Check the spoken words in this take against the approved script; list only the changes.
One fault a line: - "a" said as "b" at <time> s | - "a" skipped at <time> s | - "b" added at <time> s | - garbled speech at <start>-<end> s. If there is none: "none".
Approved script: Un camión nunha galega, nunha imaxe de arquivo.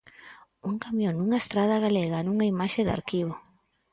- "estrada" added at 1.4 s